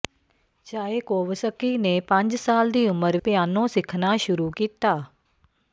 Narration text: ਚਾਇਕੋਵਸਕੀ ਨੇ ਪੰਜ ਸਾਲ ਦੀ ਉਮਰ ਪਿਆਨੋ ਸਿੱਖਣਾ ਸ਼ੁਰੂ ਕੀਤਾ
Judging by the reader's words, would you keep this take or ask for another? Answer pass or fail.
pass